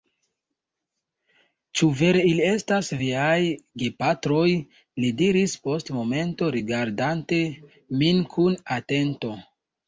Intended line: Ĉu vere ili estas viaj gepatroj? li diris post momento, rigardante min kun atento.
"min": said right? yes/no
yes